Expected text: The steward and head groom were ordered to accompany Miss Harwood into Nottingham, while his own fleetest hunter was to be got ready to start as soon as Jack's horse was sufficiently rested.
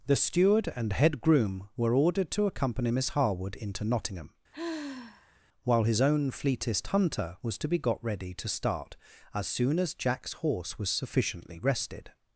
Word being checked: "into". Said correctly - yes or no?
yes